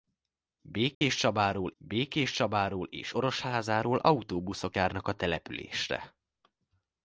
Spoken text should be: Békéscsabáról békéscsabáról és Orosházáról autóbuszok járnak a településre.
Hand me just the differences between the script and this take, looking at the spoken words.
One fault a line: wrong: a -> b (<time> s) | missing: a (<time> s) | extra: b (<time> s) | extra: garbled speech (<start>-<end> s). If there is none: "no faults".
no faults